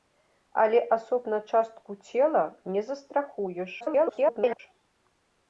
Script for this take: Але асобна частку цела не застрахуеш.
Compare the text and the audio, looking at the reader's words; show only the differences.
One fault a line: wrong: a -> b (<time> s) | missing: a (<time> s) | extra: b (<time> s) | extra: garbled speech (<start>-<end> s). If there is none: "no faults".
extra: garbled speech (3.8-4.6 s)